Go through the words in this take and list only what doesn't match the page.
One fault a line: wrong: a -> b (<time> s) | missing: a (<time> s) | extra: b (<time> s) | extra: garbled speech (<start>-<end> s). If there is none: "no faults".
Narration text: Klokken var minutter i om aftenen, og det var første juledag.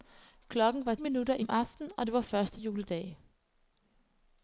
no faults